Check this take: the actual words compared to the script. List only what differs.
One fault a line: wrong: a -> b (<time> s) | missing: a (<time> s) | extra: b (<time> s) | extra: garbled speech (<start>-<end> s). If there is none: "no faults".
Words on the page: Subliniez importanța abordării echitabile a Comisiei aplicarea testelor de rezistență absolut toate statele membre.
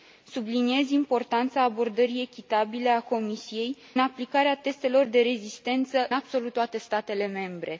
no faults